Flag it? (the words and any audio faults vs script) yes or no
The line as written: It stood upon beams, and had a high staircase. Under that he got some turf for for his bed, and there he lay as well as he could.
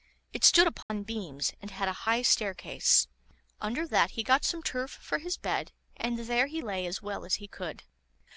yes